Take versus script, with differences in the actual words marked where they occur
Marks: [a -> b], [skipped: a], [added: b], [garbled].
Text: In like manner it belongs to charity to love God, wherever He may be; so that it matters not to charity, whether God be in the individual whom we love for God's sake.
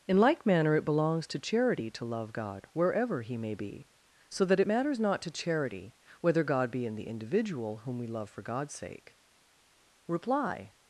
In like manner it belongs to charity to love God, wherever He may be; so that it matters not to charity, whether God be in the individual whom we love for God's sake. [added: Reply]